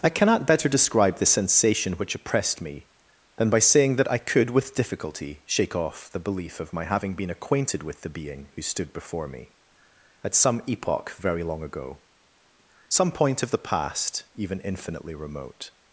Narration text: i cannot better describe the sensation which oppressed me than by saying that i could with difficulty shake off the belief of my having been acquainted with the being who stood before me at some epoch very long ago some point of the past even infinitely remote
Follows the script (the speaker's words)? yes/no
yes